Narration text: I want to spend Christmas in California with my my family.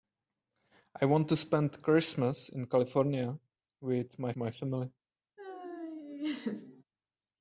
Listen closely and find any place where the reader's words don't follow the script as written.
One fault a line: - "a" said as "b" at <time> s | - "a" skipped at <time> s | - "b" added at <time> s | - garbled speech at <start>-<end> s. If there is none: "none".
none